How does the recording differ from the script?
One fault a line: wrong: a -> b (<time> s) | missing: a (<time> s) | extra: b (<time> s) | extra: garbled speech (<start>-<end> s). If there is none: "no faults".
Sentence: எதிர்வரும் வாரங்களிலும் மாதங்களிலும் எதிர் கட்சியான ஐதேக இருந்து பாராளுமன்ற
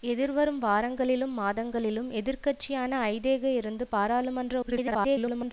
extra: garbled speech (4.6-5.5 s)